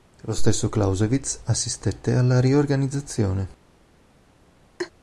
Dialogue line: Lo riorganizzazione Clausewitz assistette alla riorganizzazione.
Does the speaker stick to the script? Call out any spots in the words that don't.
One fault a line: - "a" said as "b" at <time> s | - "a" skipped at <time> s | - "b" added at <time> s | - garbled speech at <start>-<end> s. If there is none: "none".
- "riorganizzazione" said as "stesso" at 0.3 s